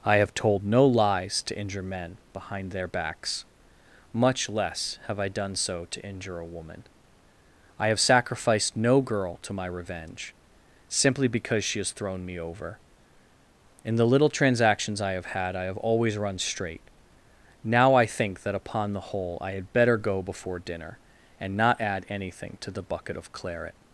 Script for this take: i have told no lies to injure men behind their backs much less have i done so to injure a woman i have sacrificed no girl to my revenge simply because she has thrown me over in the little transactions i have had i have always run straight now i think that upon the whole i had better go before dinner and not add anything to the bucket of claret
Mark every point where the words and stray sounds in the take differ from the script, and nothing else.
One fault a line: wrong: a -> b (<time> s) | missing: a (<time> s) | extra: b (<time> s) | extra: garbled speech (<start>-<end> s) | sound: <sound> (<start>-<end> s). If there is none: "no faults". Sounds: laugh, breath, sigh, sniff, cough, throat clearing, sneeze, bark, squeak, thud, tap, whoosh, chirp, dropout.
no faults